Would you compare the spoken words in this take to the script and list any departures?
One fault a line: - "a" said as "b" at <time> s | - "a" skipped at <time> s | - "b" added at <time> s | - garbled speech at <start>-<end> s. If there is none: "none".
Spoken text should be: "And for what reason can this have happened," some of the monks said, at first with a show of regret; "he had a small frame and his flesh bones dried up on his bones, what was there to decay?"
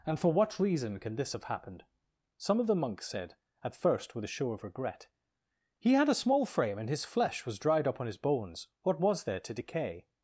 - "bones" said as "was" at 7.5 s